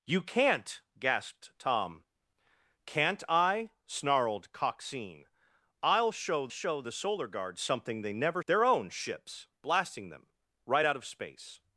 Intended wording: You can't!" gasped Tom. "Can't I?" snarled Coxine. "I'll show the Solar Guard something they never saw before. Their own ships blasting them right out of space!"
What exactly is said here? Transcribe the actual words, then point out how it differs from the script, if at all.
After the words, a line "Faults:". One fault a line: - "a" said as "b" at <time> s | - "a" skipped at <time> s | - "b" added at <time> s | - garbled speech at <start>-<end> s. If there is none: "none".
You can't!" gasped Tom. "Can't I?" snarled Coxine. "I'll show show the Solar Guard something they never. Their own ships blasting them right out of space!"
Faults:
- "show" added at 6.5 s
- "saw before" skipped at 8.4 s